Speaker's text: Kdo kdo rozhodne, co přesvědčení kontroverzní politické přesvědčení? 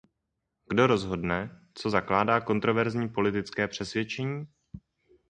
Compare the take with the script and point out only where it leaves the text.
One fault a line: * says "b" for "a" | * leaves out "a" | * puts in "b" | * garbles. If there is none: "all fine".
* leaves out "kdo"
* says "zakládá" for "přesvědčení"